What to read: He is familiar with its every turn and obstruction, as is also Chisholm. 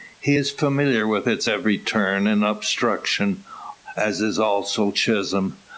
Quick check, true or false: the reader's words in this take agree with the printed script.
true